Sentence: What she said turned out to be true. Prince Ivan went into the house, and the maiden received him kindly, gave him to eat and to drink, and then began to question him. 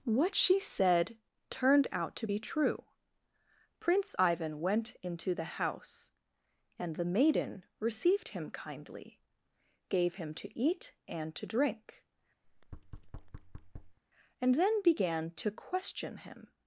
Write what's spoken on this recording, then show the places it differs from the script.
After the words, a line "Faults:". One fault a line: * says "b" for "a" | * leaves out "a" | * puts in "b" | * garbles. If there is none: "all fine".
What she said turned out to be true. Prince Ivan went into the house, and the maiden received him kindly, gave him to eat and to drink, and then began to question him.
Faults:
all fine